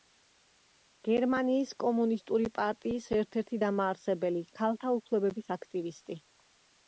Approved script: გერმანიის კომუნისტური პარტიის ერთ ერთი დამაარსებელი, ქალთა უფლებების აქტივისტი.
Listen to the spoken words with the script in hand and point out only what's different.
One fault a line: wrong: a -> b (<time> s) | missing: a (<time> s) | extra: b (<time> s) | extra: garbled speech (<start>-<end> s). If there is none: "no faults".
no faults